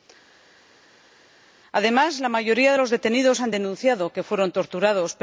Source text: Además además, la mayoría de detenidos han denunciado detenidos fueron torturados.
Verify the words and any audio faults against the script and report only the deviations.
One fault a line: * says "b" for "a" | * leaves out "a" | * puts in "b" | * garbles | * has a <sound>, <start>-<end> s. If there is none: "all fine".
* leaves out "además"
* puts in "los"
* says "que" for "detenidos"